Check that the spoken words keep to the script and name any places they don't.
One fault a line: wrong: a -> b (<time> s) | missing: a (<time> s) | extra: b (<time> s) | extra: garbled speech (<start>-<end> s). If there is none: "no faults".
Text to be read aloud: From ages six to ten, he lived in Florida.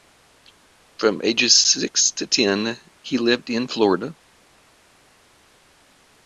no faults